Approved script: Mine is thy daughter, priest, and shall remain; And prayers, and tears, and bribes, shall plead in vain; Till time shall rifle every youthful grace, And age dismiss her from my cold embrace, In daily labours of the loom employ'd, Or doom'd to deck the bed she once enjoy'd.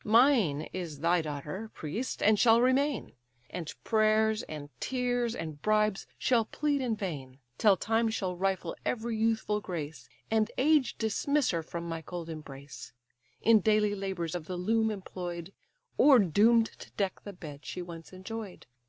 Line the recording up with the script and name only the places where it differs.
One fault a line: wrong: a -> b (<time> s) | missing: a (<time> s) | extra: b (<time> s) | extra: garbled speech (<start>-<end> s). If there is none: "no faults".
no faults